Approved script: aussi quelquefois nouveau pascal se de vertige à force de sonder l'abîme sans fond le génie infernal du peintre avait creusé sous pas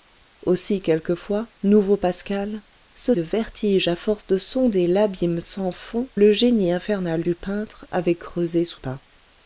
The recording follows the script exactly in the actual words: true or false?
true